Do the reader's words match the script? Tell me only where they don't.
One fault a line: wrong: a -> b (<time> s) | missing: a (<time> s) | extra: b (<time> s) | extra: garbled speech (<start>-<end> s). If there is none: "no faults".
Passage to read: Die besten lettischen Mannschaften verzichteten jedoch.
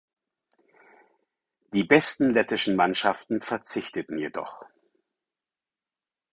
no faults